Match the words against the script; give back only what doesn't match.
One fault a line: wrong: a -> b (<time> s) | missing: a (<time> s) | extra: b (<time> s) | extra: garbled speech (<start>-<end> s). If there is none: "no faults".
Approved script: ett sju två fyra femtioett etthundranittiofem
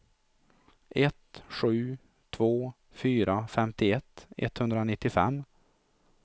no faults